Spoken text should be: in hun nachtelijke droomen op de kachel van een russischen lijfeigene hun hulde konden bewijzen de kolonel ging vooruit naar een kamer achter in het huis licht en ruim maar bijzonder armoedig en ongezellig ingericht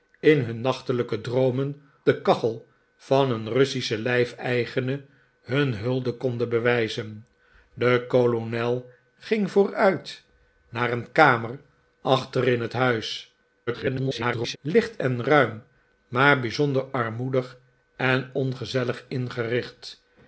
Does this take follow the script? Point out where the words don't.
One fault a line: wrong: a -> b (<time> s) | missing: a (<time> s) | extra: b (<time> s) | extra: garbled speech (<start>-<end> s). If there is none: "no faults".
missing: op (1.8 s)
extra: garbled speech (13.7-14.6 s)